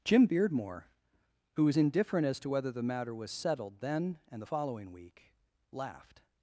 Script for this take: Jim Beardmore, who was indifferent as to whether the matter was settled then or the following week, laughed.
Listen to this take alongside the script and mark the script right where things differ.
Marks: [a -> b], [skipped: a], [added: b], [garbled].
Jim Beardmore, who was indifferent as to whether the matter was settled then [or -> and] the following week, laughed.